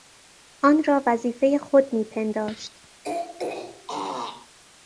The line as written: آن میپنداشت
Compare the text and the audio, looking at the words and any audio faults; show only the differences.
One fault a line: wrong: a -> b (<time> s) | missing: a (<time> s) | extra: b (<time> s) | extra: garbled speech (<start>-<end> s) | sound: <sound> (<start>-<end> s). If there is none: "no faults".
extra: را وظیفهی خود (0.8 s)
sound: throat clearing (3.0-4.5 s)